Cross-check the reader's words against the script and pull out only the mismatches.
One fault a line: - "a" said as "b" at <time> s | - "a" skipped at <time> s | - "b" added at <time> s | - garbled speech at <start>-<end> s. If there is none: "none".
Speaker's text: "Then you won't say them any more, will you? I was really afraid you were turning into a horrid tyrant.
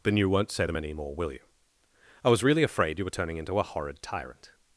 none